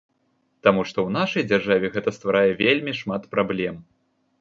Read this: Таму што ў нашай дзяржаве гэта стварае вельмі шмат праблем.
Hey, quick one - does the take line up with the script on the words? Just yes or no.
yes